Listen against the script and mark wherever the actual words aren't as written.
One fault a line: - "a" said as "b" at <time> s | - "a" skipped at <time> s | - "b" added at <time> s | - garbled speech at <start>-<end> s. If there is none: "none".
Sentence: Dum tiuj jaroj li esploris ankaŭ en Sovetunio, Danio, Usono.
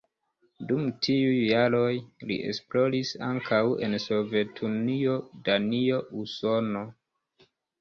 none